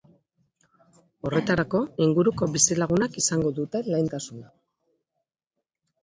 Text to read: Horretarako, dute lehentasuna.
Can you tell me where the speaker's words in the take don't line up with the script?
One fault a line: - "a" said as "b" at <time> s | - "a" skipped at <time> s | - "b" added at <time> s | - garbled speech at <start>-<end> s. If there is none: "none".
- "inguruko bizilagunak izango" added at 2.0 s